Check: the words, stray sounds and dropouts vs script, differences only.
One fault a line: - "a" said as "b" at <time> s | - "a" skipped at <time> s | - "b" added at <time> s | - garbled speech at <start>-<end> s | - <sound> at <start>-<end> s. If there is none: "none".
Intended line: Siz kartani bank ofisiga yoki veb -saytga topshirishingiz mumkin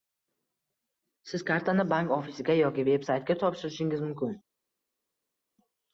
none